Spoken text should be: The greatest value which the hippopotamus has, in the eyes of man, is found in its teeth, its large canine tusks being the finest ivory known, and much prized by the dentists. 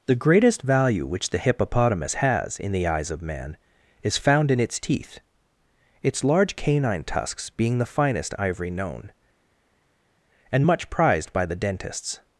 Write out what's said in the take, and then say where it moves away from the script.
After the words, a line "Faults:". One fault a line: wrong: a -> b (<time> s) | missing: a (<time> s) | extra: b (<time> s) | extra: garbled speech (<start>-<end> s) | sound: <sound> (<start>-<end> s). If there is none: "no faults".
The greatest value which the hippopotamus has, in the eyes of man, is found in its teeth, its large canine tusks being the finest ivory known, and much prized by the dentists.
Faults:
no faults